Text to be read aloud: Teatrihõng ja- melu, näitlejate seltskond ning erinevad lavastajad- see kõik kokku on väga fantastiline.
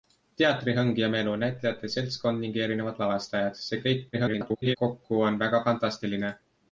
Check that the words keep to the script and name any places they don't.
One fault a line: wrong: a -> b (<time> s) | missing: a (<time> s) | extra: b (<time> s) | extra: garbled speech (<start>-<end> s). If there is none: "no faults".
extra: garbled speech (4.1-4.8 s)